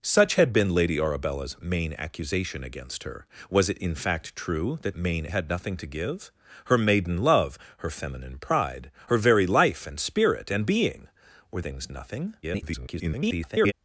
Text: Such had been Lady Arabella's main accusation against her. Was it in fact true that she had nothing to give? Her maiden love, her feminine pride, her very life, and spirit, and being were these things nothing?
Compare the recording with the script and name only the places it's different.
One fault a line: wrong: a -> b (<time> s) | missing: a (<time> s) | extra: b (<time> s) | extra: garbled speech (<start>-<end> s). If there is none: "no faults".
wrong: she -> main (4.9 s)
missing: these (11.6 s)
extra: garbled speech (12.4-13.7 s)